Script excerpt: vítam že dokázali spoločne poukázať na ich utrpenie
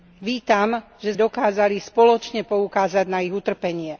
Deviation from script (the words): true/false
false